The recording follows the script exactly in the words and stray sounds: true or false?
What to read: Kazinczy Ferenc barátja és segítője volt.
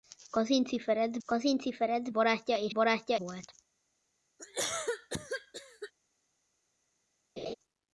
false